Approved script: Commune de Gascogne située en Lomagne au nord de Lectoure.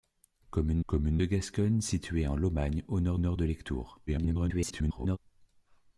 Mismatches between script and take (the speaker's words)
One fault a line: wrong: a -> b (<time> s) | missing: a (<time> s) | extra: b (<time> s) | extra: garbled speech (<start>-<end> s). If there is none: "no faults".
extra: commune (0.8 s)
extra: nord (3.2 s)
extra: garbled speech (4.1-5.2 s)